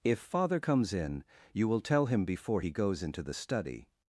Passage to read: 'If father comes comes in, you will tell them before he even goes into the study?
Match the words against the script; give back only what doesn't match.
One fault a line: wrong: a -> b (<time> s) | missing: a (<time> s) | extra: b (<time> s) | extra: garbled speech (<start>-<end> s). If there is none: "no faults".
missing: comes (0.9 s)
wrong: them -> him (2.0 s)
missing: even (2.7 s)